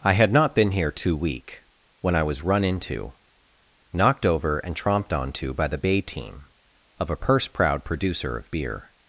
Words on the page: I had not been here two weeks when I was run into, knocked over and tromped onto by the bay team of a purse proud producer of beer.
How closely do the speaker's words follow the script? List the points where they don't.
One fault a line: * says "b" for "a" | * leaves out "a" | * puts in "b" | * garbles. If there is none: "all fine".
* says "week" for "weeks"